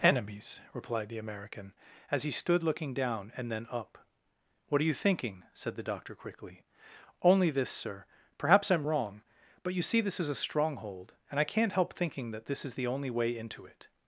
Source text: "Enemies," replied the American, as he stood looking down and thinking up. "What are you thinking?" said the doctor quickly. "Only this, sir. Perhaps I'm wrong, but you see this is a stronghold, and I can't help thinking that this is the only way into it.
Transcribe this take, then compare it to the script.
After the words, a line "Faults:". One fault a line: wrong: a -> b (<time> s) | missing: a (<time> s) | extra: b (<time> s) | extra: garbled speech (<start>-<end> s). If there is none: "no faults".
"Enemies," replied the American, as he stood looking down and then up. "What are you thinking?" said the doctor quickly. "Only this, sir. Perhaps I'm wrong, but you see this is a stronghold, and I can't help thinking that this is the only way into it.
Faults:
wrong: thinking -> then (3.5 s)